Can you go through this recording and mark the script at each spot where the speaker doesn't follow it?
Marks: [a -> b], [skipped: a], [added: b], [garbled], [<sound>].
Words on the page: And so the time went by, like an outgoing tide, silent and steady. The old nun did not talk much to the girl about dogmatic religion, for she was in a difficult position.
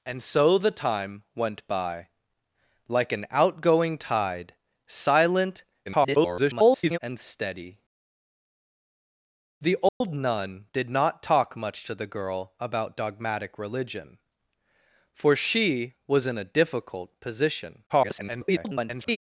And so the time went by, like an outgoing tide, silent [garbled] and steady. The old [dropout] nun did not talk much to the girl about dogmatic religion, for she was in a difficult position. [garbled]